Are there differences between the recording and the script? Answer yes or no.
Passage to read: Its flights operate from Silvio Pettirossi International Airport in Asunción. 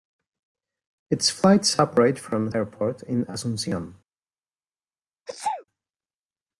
yes